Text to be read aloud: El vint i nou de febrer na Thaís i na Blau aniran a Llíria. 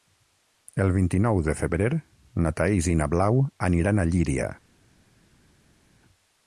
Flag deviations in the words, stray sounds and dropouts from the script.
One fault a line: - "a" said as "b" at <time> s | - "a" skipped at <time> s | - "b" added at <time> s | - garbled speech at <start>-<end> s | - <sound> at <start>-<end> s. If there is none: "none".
none